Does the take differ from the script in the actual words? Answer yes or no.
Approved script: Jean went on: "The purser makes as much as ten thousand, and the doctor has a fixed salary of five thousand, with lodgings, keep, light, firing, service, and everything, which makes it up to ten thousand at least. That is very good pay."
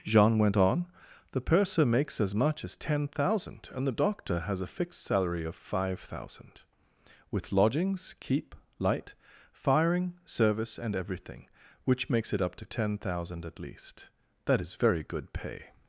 no